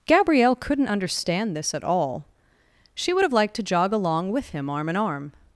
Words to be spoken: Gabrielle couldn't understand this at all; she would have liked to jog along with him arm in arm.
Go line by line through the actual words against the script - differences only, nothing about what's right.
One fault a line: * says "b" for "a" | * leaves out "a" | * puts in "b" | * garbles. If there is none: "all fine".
all fine